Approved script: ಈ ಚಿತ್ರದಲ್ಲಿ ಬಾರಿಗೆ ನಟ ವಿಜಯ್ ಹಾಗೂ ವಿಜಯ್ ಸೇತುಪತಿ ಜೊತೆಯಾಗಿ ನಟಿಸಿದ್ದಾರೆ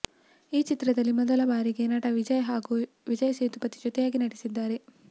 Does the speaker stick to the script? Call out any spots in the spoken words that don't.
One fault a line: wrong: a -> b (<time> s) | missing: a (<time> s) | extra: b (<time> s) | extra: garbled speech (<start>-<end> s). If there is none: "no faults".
extra: ಮೊದಲ (1.2 s)